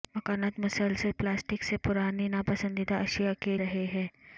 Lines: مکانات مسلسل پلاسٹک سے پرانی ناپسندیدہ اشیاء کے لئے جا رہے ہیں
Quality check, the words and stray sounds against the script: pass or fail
fail